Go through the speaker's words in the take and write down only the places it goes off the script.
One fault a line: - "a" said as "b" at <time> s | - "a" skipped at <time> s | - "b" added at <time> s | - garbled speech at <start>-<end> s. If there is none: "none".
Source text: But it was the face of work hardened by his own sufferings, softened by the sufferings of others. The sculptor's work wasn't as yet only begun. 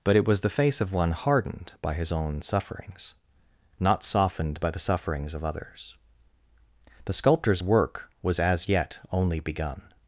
- "work" said as "one" at 0.9 s
- "not" added at 3.8 s
- "wasn't" said as "was" at 8.2 s